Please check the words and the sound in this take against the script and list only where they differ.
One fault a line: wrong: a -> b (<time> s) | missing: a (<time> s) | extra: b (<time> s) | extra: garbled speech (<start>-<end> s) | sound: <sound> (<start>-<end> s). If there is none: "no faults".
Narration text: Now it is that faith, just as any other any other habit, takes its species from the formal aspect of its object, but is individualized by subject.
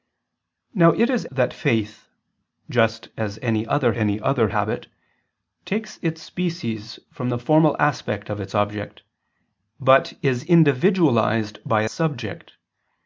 no faults